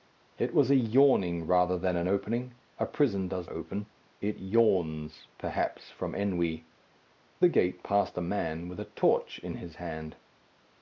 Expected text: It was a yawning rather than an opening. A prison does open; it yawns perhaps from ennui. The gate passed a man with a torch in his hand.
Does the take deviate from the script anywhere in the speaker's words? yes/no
no